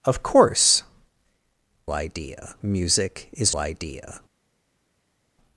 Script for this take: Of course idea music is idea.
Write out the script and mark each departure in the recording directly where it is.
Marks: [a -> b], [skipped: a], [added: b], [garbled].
Of course idea music is idea.